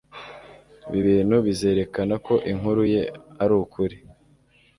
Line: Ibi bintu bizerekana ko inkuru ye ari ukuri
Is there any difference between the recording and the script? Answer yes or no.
no